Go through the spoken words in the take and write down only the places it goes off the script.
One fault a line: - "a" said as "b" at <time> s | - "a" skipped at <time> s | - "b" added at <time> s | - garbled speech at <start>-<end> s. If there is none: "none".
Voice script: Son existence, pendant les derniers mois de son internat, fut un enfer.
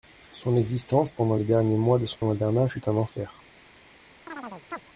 none